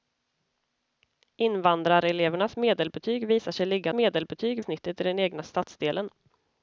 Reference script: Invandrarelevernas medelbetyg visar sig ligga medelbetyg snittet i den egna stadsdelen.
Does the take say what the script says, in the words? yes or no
yes